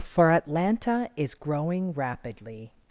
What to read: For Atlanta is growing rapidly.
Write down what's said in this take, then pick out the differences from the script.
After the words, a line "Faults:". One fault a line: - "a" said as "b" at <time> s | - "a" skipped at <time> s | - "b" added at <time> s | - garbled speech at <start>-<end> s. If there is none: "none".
For Atlanta is growing rapidly.
Faults:
none